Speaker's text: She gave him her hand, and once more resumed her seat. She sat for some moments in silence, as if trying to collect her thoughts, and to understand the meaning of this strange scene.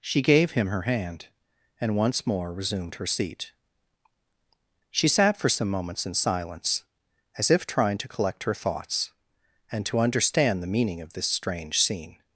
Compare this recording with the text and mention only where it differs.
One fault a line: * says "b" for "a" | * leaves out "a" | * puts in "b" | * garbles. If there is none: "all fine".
all fine